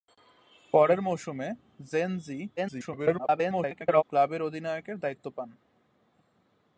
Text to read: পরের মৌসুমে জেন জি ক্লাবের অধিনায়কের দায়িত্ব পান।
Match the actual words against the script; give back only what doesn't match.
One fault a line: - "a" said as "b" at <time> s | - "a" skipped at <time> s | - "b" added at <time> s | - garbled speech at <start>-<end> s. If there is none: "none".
- garbled speech at 2.6-4.0 s